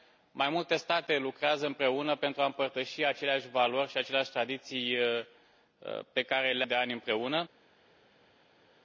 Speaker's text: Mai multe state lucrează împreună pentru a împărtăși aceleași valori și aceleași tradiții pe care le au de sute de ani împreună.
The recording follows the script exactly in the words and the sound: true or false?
false